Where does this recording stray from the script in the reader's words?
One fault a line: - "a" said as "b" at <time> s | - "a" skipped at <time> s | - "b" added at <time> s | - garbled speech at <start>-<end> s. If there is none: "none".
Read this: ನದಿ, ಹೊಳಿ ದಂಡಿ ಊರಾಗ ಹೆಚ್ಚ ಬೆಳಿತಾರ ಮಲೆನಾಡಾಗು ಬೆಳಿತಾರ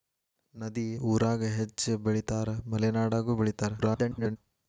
- "ಹೊಳಿ ದಂಡಿ" skipped at 0.8 s
- garbled speech at 3.8-4.4 s